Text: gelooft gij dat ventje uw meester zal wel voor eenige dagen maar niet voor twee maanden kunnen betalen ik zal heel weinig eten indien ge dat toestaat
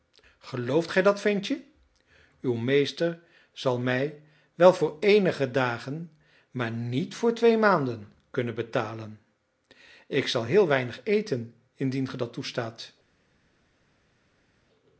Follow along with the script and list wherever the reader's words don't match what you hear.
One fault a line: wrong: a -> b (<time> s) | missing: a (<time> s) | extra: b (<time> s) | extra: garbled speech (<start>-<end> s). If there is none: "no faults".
extra: mij (3.8 s)